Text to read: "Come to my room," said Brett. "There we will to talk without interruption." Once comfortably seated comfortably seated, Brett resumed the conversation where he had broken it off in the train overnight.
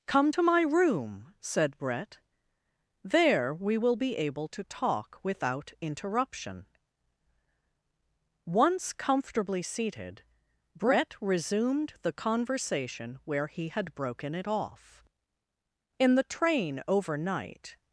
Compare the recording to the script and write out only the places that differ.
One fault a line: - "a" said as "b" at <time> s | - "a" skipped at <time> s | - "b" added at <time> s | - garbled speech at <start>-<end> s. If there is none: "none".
- "be able" added at 4.0 s
- "comfortably seated" skipped at 10.2 s